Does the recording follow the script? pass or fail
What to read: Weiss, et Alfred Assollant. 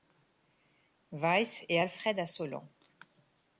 pass